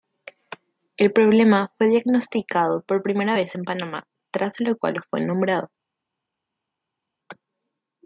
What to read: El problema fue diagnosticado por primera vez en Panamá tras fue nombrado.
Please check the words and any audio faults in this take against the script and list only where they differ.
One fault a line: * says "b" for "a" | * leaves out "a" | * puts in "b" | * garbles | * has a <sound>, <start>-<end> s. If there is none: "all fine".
* puts in "lo cual"